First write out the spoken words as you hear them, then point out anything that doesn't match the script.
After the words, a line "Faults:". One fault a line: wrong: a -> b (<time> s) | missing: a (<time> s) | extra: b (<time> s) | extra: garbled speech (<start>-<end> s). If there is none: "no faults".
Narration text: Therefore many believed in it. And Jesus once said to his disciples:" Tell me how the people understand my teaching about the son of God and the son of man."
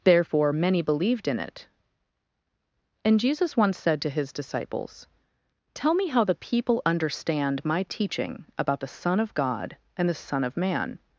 Therefore many believed in it. And Jesus once said to his disciples:" Tell me how the people understand my teaching about the son of God and the son of man."
Faults:
no faults